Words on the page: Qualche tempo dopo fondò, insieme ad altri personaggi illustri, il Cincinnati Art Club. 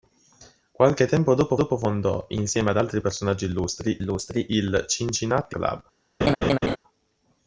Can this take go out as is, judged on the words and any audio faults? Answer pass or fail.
fail